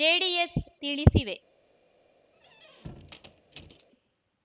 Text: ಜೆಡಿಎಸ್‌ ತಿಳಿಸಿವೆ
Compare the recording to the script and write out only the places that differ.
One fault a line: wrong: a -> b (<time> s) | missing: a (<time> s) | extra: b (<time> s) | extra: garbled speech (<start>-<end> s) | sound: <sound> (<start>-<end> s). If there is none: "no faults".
sound: squeak (2.3-3.9 s)